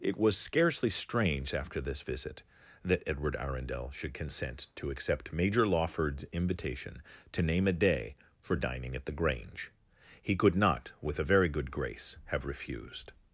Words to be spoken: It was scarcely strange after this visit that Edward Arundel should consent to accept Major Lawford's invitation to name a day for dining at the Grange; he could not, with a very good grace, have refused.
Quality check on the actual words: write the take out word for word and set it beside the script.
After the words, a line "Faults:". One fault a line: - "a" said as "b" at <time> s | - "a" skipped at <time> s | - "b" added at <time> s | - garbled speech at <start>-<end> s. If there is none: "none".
It was scarcely strange after this visit that Edward Arundel should consent to accept Major Lawford's invitation to name a day for dining at the Grange; he could not, with a very good grace, have refused.
Faults:
none